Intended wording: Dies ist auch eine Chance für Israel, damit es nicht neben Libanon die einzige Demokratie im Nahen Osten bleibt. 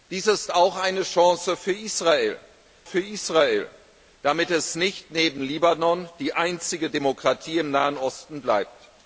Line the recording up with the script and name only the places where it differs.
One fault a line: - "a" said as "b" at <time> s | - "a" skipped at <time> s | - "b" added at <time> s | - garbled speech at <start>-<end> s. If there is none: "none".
- "für Israel" added at 2.8 s